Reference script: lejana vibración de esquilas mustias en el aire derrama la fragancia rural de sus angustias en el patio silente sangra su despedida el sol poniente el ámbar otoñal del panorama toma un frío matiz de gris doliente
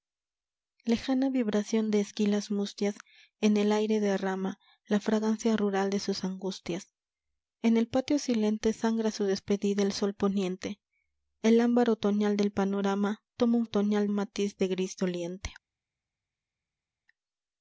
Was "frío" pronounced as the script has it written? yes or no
no